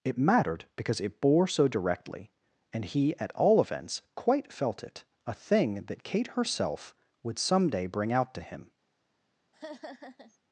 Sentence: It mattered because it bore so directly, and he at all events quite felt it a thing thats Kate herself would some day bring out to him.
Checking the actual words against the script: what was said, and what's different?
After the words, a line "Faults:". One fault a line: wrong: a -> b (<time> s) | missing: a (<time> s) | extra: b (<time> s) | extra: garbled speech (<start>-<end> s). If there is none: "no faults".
It mattered because it bore so directly, and he at all events quite felt it a thing that Kate herself would some day bring out to him.
Faults:
wrong: thats -> that (5.8 s)